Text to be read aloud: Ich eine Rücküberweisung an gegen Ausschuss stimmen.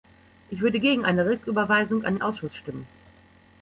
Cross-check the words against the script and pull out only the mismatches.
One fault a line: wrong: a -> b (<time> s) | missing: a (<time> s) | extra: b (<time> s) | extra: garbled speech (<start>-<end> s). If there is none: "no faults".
extra: würde gegen (0.6 s)
wrong: gegen -> den (2.1 s)